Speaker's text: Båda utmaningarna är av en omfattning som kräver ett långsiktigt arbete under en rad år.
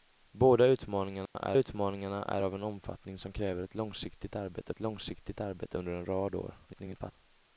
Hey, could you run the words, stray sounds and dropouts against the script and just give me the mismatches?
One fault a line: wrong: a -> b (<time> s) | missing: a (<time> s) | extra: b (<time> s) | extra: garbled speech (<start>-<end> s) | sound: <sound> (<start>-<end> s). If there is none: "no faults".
sound: dropout (1.3-1.3 s)
extra: utmaningarna är (1.5 s)
extra: ett långsiktigt arbete (4.7 s)
extra: garbled speech (6.7-7.1 s)